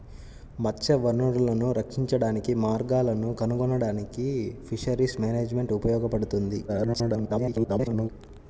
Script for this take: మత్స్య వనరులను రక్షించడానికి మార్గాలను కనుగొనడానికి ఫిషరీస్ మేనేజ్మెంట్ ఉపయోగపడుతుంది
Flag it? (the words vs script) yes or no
yes